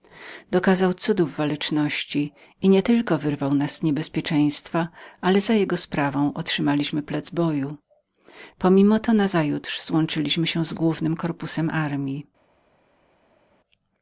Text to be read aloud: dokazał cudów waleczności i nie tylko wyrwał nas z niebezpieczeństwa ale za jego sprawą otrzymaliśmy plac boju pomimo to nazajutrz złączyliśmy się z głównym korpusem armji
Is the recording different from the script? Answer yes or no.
no